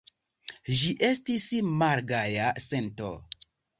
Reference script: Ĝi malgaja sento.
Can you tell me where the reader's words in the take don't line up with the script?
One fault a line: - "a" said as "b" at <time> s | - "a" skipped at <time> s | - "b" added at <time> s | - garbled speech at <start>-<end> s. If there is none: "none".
- "estis" added at 1.1 s